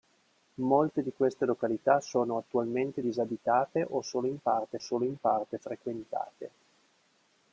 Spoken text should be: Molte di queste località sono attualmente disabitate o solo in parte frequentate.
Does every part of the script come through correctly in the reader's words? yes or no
no